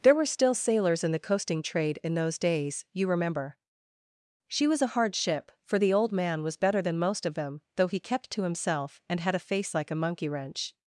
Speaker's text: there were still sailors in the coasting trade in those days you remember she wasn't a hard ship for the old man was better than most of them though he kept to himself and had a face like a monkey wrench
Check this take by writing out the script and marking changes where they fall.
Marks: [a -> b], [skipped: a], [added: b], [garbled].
there were still sailors in the coasting trade in those days you remember she [wasn't -> was] a hard ship for the old man was better than most of them though he kept to himself and had a face like a monkey wrench